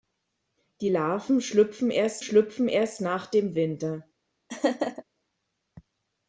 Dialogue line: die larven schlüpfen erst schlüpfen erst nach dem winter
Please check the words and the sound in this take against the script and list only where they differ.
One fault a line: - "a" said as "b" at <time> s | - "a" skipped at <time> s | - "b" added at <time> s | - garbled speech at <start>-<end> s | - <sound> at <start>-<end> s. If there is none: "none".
- laugh at 4.5-5.0 s